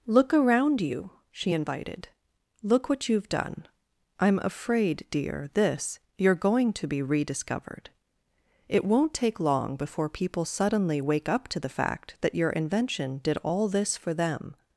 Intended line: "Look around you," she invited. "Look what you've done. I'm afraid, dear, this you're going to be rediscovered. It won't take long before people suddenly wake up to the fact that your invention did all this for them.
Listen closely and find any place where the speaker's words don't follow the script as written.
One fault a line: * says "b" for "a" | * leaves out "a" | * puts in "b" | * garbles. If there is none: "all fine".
all fine